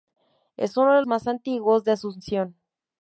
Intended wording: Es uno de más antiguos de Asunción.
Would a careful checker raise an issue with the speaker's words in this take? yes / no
no